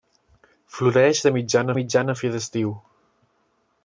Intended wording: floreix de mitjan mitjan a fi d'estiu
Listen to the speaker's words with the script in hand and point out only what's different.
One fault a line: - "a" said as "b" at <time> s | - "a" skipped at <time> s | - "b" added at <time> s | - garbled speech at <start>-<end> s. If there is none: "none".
none